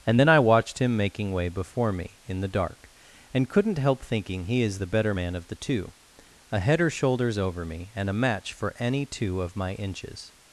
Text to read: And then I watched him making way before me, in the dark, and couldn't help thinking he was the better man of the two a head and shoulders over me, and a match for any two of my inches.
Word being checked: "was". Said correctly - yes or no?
no